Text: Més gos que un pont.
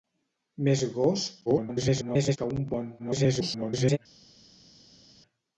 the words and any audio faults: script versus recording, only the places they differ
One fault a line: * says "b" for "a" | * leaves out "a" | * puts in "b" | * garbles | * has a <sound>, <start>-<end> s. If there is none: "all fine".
* garbles
* garbles